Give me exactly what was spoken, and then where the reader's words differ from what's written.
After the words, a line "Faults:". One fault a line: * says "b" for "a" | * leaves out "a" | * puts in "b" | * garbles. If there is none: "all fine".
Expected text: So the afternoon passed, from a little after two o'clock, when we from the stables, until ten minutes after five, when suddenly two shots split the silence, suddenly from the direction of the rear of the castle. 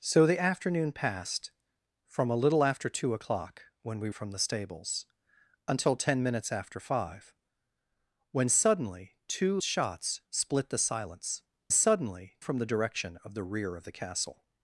So the afternoon passed, from a little after two o'clock, when we from the stables, until ten minutes after five, when suddenly two shots split the silence, suddenly from the direction of the rear of the castle.
Faults:
all fine